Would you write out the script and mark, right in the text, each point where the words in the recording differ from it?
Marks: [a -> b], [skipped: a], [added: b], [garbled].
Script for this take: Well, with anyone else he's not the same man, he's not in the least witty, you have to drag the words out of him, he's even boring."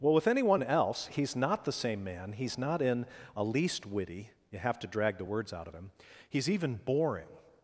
Well, with anyone else he's not the same man, he's not in [the -> a] least witty, you have to drag the words out of him, he's even boring."